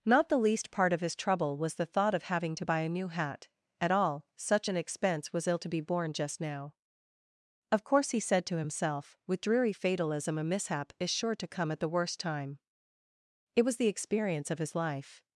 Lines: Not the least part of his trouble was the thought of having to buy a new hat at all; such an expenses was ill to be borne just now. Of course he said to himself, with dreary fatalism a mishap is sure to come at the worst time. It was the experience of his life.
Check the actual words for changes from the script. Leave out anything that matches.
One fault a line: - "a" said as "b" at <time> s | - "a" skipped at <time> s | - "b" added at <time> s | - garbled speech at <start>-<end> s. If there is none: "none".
- "expenses" said as "expense" at 4.7 s